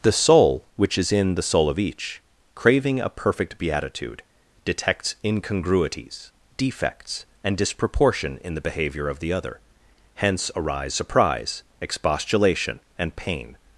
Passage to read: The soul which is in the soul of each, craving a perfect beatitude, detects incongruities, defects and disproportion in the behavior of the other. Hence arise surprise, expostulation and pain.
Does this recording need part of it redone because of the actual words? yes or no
no